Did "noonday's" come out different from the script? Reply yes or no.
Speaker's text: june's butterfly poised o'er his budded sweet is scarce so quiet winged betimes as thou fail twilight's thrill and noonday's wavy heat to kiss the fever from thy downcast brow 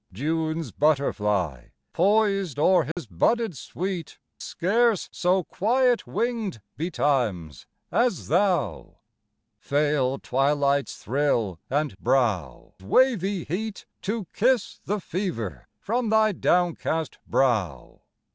yes